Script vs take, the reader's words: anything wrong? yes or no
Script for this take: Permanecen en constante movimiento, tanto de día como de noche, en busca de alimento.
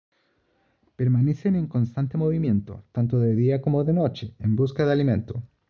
no